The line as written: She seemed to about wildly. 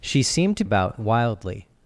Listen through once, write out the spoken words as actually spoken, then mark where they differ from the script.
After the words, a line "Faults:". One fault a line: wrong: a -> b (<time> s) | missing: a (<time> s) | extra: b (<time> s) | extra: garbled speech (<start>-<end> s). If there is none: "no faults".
She seemed to about wildly.
Faults:
no faults